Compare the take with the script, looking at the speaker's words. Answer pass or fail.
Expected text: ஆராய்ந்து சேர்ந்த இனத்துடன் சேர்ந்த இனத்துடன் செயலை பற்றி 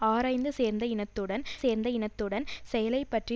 pass